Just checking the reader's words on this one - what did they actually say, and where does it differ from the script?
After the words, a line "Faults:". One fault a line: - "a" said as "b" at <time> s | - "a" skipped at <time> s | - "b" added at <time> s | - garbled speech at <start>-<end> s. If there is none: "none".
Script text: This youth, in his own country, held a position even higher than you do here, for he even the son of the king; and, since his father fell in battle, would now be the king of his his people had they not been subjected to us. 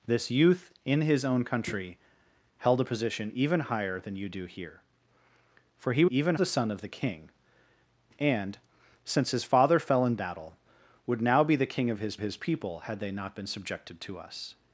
This youth, in his own country, held a position even higher than you do here, for he even the son of the king; and, since his father fell in battle, would now be the king of his his people had they not been subjected to us.
Faults:
none